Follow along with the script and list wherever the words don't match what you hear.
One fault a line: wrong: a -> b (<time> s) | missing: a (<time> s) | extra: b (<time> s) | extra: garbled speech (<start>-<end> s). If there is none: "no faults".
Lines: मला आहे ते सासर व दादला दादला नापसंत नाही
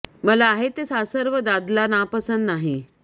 missing: दादला (1.9 s)